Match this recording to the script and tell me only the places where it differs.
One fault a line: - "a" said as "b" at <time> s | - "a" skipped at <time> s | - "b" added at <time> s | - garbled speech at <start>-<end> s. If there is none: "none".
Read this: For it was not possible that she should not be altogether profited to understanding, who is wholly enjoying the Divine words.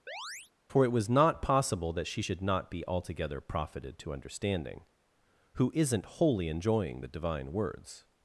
- "is" said as "isn't" at 5.7 s